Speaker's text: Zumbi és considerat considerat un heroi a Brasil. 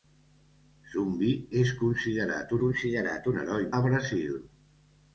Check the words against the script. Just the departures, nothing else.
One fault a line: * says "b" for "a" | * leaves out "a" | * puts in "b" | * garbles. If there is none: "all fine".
all fine